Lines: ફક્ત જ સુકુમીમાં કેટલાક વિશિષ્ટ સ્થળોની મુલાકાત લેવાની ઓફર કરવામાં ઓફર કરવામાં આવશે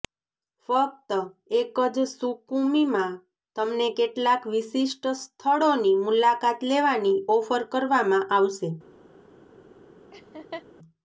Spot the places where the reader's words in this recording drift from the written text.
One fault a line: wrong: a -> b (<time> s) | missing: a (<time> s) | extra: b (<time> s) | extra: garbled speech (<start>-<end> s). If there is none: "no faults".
extra: એક (1.6 s)
extra: તમને (3.5 s)
missing: ઓફર કરવામાં (8.3 s)